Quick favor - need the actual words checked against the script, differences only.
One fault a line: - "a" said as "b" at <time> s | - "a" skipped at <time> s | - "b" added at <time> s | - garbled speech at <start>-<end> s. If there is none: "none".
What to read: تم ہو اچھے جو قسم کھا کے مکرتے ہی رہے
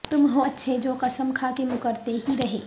none